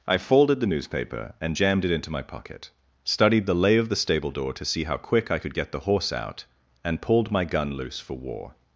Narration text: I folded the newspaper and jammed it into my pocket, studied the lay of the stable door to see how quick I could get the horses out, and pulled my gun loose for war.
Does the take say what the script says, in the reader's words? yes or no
no